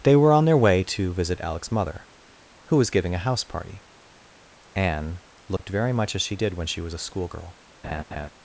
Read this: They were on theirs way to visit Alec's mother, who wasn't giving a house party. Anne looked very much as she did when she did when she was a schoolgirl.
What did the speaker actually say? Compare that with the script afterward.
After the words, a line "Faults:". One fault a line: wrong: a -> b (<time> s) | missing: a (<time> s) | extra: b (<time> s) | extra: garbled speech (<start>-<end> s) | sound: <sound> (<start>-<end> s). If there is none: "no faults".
They were on their way to visit Alec's mother, who was giving a house party. Anne looked very much as she did when she was a schoolgirl.
Faults:
wrong: theirs -> their (0.5 s)
wrong: wasn't -> was (2.8 s)
sound: dropout (5.6-5.6 s)
missing: did when she (6.8 s)
sound: laugh (7.8-8.3 s)